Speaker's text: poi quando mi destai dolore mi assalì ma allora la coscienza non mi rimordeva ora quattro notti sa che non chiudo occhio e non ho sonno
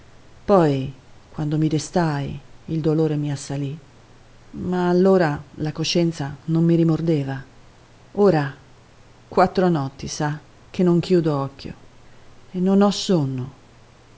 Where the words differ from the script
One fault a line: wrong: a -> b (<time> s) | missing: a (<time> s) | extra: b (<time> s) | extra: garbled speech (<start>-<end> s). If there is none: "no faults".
extra: il (2.6 s)